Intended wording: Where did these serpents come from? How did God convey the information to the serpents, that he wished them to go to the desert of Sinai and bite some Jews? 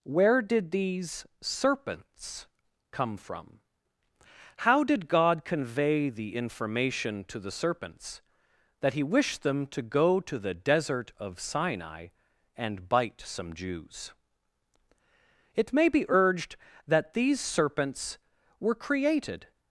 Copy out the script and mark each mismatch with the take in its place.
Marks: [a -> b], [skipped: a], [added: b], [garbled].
Where did these serpents come from? How did God convey the information to the serpents, that he wished them to go to the desert of Sinai and bite some Jews? [added: It may be urged that these serpents were created]